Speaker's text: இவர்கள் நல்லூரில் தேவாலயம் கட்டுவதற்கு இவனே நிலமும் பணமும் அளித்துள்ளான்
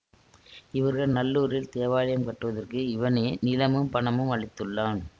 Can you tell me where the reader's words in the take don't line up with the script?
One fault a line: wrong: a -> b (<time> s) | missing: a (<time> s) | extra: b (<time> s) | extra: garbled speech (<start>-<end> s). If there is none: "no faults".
no faults